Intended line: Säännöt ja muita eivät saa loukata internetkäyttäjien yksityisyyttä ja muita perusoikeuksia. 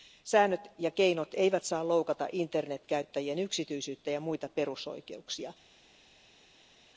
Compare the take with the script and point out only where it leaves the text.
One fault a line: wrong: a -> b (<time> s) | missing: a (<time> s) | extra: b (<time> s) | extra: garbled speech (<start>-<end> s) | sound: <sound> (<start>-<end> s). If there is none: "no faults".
wrong: muita -> keinot (0.9 s)